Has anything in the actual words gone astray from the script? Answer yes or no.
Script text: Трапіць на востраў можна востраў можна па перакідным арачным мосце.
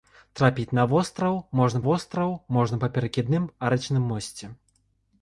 no